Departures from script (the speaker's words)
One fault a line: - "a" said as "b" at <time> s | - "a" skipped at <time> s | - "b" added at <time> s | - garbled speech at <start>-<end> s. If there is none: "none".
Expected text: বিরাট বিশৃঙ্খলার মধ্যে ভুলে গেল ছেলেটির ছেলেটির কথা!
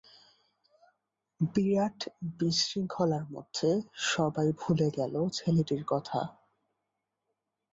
- "সবাই" added at 4.1 s
- "ছেলেটির" skipped at 5.8 s